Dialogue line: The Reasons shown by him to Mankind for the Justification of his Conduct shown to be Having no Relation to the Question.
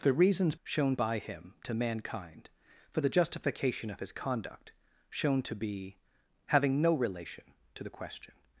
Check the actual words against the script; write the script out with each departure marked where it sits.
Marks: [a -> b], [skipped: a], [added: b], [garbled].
The Reasons shown by him to Mankind for the Justification of his Conduct shown to be Having no Relation to the Question.